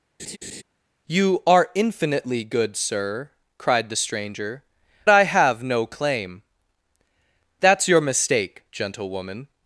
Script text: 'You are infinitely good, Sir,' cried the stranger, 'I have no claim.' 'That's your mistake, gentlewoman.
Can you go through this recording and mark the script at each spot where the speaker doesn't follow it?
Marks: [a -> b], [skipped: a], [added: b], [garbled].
'You are infinitely good, Sir,' cried the stranger, 'I have no claim.' 'That's your mistake, gentlewoman.